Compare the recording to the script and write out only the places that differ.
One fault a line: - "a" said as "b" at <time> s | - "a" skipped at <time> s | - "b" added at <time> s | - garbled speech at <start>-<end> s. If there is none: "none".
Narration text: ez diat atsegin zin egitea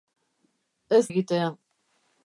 - "diat atsegin zin" skipped at 1.0 s